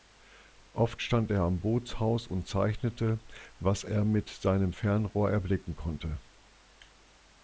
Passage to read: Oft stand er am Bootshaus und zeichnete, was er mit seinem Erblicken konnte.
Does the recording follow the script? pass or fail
fail